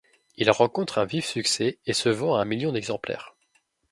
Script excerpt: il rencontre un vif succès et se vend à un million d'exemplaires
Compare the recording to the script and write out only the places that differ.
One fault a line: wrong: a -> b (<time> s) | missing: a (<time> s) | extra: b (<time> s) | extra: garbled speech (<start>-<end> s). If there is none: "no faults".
no faults